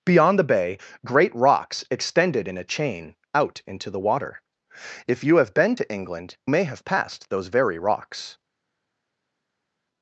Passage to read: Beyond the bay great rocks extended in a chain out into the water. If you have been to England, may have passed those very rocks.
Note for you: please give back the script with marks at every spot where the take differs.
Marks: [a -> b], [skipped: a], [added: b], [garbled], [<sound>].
Beyond the bay great rocks extended in a chain out into the water. If you have been to England, may have passed those very rocks.